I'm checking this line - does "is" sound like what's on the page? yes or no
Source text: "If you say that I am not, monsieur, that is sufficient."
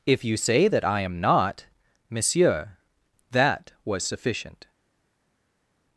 no